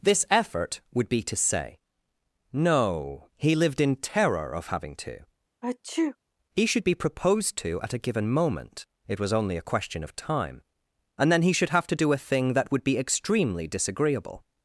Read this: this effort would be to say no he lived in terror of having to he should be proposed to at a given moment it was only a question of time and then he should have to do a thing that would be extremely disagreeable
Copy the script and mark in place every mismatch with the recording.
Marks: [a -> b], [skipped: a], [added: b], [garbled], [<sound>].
this effort would be to say no he lived in terror of having to [sneeze] he should be proposed to at a given moment it was only a question of time and then he should have to do a thing that would be extremely disagreeable